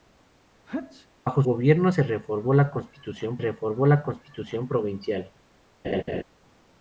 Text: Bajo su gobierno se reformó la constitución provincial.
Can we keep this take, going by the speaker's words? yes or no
no